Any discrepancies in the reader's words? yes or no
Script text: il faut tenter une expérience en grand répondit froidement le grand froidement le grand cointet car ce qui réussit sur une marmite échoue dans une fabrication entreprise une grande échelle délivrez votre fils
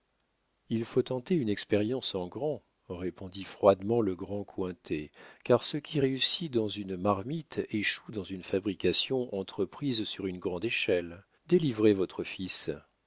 yes